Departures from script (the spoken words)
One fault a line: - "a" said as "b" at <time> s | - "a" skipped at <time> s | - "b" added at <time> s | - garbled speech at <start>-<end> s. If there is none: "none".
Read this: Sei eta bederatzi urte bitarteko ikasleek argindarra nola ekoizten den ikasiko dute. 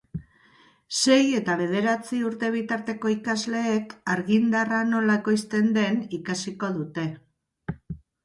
none